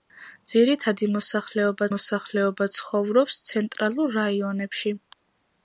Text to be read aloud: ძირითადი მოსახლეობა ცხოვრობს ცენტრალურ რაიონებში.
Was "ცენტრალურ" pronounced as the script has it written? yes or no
yes